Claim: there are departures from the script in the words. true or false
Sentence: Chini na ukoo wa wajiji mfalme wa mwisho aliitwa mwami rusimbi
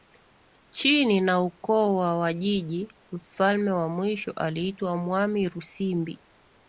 false